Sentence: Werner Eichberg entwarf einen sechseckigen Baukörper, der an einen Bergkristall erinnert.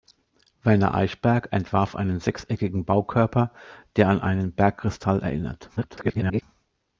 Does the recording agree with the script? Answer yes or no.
no